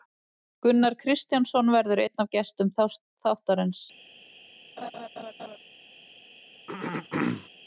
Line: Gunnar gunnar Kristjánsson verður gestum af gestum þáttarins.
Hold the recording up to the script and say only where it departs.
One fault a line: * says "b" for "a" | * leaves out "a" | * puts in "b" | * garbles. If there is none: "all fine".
* leaves out "gunnar"
* says "einn" for "gestum"